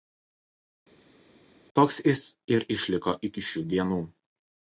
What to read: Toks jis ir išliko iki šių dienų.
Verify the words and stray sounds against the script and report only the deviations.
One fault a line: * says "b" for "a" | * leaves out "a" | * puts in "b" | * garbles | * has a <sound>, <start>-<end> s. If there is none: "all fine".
all fine